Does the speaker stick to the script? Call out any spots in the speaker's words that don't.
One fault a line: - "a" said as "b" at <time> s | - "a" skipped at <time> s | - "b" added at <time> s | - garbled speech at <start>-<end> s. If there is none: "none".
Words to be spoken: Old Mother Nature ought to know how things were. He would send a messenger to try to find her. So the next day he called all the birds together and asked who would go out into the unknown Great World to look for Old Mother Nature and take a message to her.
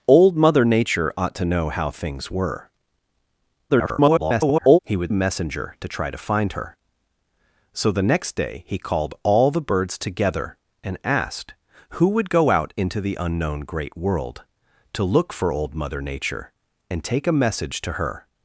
- garbled speech at 3.7-4.8 s
- "send" skipped at 5.1 s